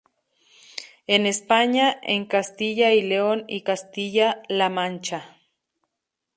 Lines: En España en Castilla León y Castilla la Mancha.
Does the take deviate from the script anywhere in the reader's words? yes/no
yes